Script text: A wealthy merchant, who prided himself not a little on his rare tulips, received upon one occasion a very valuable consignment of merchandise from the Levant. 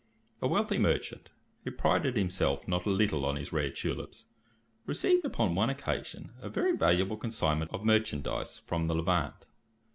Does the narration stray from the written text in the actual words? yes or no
no